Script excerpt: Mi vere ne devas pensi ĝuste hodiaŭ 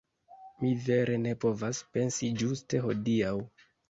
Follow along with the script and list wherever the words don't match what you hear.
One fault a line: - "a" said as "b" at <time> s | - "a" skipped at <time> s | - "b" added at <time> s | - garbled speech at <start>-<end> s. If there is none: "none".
- "devas" said as "povas" at 1.4 s